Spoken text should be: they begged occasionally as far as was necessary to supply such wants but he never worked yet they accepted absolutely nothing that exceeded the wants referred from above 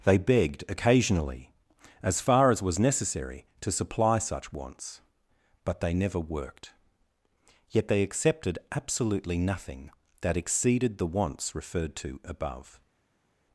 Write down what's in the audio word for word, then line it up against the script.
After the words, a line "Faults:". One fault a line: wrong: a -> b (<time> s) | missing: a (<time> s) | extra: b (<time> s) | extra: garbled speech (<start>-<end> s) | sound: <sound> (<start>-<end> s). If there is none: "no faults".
they begged occasionally as far as was necessary to supply such wants but they never worked yet they accepted absolutely nothing that exceeded the wants referred to above
Faults:
wrong: he -> they (5.8 s)
wrong: from -> to (12.0 s)